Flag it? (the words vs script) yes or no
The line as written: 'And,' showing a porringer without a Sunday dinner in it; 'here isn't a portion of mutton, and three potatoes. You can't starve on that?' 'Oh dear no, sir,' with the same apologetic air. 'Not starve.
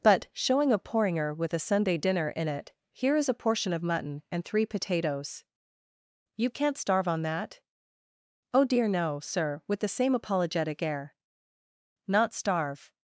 yes